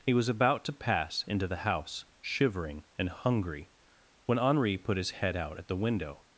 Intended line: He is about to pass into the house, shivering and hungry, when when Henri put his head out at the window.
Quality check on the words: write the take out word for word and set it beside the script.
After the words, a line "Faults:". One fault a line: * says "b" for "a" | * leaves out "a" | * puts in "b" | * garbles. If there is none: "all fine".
He was about to pass into the house, shivering and hungry, when Henri put his head out at the window.
Faults:
* says "was" for "is"
* leaves out "when"